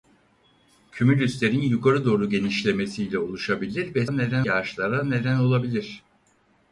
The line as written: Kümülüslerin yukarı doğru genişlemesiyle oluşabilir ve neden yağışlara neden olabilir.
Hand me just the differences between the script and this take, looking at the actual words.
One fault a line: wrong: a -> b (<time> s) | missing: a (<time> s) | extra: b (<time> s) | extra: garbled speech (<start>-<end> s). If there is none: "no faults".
no faults